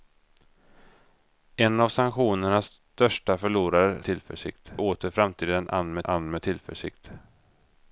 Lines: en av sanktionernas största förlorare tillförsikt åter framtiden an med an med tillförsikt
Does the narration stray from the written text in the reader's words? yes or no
no